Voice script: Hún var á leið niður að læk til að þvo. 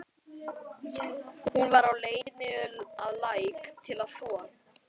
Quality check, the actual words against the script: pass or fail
pass